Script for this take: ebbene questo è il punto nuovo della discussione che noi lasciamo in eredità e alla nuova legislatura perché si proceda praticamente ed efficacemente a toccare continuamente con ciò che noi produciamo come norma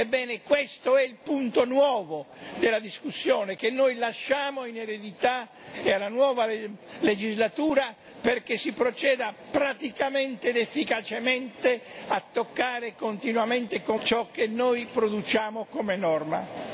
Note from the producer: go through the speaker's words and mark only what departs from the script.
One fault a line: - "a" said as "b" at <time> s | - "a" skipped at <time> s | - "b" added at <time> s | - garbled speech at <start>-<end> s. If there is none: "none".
none